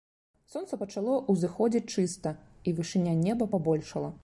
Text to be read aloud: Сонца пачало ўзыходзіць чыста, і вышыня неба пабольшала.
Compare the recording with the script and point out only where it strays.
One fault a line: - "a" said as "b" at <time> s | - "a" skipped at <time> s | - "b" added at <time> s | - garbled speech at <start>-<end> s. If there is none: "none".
none